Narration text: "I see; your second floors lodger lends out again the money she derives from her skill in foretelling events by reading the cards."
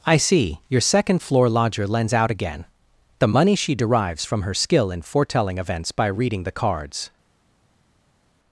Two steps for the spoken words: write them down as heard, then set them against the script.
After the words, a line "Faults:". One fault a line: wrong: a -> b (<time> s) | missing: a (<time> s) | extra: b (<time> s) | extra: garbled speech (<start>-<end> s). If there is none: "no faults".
"I see; your second floor lodger lends out again the money she derives from her skill in foretelling events by reading the cards."
Faults:
wrong: floors -> floor (1.2 s)